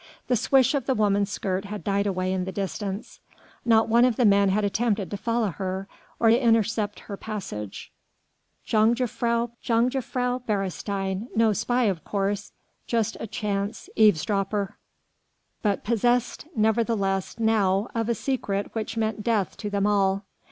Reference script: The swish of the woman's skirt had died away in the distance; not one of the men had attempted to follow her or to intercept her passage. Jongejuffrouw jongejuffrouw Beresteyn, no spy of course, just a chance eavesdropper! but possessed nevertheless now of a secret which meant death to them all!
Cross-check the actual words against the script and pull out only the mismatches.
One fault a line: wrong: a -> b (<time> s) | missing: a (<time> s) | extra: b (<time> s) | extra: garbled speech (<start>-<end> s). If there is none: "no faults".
no faults